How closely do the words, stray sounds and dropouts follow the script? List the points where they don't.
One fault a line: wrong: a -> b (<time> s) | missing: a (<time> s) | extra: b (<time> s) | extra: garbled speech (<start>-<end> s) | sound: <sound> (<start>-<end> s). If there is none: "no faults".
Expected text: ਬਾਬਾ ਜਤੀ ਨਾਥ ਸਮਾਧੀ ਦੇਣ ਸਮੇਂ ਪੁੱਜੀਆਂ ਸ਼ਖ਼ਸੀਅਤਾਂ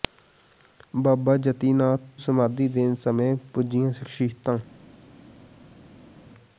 no faults